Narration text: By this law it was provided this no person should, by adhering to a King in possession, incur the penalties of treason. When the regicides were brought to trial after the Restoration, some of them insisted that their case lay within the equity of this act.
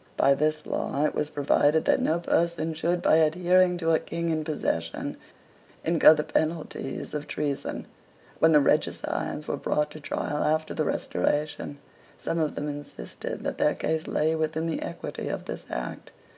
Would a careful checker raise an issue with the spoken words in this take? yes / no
yes